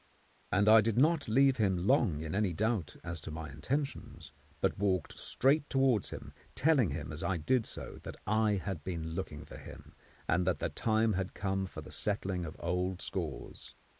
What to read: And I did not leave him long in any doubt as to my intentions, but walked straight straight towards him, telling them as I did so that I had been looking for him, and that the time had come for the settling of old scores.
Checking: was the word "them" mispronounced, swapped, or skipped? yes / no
yes